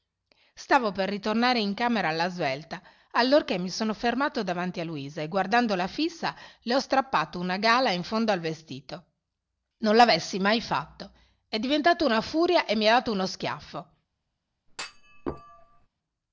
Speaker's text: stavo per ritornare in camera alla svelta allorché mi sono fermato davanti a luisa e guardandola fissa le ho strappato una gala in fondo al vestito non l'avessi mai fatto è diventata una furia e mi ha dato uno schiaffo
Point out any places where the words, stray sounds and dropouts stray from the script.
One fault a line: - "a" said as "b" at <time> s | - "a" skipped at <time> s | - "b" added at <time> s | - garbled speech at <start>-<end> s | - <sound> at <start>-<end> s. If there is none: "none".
- thud at 14.7-15.9 s